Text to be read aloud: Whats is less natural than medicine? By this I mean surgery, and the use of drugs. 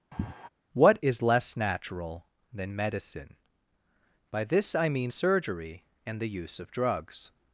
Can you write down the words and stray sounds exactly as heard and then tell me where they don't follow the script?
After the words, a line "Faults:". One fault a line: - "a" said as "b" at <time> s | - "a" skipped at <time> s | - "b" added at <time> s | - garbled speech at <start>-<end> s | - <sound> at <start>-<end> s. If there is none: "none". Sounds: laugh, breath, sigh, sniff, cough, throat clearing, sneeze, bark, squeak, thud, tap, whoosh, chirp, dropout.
What is less natural than medicine? By this I mean surgery, and the use of drugs.
Faults:
- sigh at 0.1-0.5 s
- "Whats" said as "What" at 0.7 s